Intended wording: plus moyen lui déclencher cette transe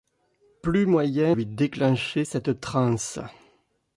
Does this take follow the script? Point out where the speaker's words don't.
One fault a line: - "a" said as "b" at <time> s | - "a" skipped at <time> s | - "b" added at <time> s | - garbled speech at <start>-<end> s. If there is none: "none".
none